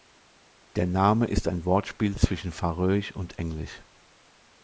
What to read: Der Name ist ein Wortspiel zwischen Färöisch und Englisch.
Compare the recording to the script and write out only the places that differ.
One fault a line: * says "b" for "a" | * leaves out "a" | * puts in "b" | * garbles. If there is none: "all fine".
all fine